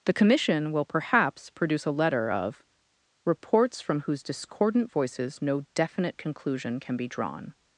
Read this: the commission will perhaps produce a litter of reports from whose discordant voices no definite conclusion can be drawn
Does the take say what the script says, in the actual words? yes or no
no